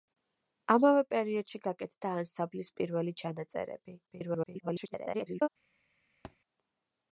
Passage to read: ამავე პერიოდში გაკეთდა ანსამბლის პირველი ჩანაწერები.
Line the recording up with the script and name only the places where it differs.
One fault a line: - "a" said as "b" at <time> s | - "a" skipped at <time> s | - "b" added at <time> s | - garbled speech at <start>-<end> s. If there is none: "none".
- garbled speech at 4.1-5.5 s